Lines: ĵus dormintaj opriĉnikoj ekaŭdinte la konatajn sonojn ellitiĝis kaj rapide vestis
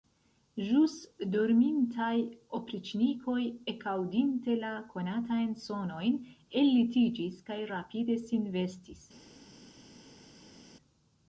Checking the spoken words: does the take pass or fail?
fail